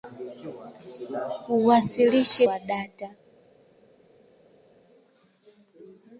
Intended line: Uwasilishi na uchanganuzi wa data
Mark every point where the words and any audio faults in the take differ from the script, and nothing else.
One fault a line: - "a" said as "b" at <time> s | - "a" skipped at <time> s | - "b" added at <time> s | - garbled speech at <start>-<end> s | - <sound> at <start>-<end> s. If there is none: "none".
- "na uchanganuzi" skipped at 2.5 s